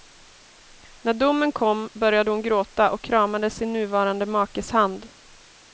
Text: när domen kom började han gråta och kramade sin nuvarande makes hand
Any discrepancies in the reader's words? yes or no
yes